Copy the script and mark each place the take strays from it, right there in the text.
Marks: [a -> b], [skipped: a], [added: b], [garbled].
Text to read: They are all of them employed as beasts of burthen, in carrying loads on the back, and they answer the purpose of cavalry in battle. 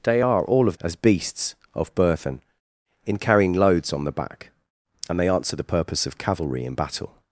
They are all of [skipped: them employed] as beasts of burthen, in carrying loads on the back, and they answer the purpose of cavalry in battle.